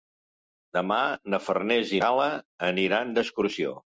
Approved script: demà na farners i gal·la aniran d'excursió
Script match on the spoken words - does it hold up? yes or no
yes